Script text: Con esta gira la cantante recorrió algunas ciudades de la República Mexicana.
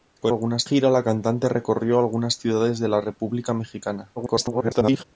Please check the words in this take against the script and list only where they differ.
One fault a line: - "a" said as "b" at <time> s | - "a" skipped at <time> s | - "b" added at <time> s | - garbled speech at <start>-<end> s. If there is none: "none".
- "esta" said as "algunas" at 0.3 s
- garbled speech at 4.2-5.0 s